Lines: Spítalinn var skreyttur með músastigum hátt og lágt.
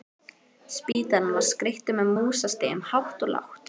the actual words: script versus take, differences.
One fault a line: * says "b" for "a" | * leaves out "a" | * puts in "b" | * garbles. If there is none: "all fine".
all fine